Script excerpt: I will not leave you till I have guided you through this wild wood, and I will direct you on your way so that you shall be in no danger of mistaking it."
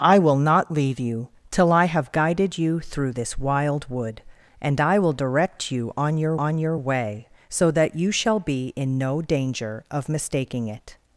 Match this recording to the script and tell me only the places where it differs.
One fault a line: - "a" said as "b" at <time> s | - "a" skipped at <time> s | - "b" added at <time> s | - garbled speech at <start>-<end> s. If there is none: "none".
- "on your" added at 6.4 s